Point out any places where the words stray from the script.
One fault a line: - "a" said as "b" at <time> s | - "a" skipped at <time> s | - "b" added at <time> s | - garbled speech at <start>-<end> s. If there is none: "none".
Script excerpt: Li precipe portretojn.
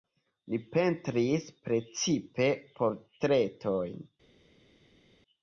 - "pentris" added at 0.8 s